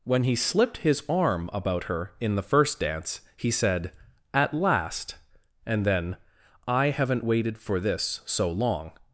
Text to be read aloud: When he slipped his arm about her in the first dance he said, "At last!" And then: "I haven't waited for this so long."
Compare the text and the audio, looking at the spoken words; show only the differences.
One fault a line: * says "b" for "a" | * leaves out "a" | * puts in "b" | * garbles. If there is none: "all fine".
all fine